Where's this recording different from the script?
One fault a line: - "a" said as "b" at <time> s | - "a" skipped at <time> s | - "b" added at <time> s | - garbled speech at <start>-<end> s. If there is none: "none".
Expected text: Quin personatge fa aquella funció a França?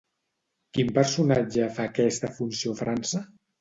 - "aquella" said as "aquesta" at 1.9 s